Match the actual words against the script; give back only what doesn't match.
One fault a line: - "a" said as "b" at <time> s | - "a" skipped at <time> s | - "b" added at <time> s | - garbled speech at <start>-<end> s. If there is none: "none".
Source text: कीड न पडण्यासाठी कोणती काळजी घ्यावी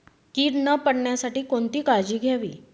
none